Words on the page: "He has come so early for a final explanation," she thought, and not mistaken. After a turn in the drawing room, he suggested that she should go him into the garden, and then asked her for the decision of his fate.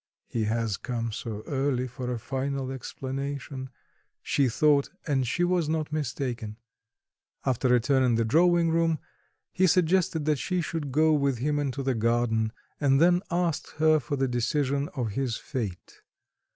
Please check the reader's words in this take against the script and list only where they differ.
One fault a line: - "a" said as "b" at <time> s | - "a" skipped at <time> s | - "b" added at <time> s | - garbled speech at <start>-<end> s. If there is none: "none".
- "she was" added at 5.3 s
- "with" added at 11.1 s